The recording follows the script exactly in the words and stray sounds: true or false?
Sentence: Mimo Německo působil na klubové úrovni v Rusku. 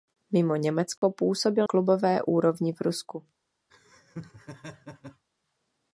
false